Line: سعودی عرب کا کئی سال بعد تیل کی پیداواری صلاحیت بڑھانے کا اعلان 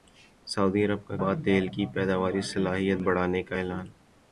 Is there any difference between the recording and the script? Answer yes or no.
yes